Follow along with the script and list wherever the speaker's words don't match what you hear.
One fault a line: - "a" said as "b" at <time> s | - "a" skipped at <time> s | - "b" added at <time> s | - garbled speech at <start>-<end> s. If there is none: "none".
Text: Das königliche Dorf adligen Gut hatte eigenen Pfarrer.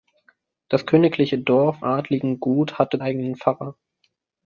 none